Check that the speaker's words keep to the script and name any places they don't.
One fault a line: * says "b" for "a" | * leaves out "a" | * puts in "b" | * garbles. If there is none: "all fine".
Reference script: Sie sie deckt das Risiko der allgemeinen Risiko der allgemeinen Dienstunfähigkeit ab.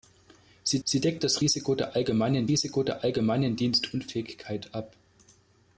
all fine